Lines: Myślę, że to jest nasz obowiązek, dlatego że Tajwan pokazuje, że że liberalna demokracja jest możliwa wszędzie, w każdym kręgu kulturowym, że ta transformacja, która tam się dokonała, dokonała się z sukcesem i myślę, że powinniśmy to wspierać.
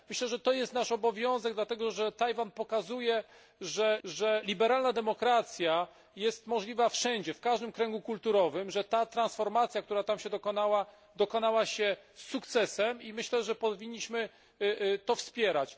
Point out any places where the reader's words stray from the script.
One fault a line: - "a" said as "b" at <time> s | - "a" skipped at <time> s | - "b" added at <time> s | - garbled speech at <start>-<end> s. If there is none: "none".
none